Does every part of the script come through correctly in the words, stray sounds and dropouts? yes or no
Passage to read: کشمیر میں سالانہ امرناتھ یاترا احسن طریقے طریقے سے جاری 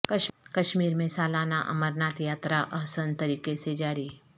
no